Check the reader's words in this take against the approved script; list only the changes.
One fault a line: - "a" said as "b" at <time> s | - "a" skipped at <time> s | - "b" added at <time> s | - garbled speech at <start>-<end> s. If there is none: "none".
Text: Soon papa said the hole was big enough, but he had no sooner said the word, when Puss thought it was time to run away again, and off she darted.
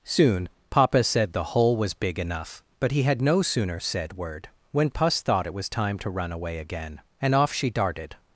- "the" skipped at 4.1 s